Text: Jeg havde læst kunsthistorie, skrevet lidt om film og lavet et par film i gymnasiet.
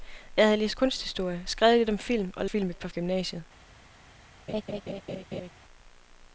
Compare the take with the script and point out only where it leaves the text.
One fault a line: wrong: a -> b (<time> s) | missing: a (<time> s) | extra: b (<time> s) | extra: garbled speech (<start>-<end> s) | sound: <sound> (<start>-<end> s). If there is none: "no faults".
wrong: lavet -> film (2.4 s)
missing: film (2.9 s)
sound: laugh (4.5-5.5 s)